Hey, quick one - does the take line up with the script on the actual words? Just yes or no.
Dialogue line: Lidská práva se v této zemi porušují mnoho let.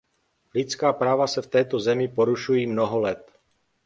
yes